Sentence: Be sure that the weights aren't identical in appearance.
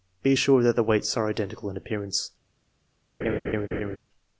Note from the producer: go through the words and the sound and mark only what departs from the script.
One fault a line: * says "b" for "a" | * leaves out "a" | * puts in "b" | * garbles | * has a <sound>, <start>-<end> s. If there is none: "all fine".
* says "are" for "aren't"
* has a laugh, 3.2-4.0 s